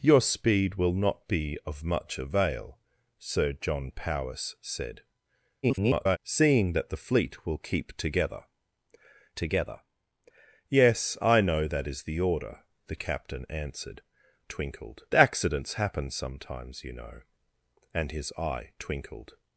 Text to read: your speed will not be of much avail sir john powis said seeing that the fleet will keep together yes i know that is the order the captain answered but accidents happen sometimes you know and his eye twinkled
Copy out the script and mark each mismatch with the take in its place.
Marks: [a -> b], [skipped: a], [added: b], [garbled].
your speed will not be of much avail sir john powis said [garbled] seeing that the fleet will keep together [added: together] yes i know that is the order the captain answered [but -> twinkled] accidents happen sometimes you know and his eye twinkled